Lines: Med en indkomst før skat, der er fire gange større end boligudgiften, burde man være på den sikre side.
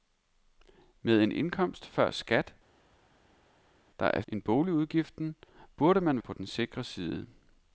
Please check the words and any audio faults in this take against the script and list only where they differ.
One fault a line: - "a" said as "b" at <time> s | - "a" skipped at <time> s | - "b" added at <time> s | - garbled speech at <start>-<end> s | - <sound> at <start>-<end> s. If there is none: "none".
- "fire gange større" skipped at 4.2 s
- "være" skipped at 6.2 s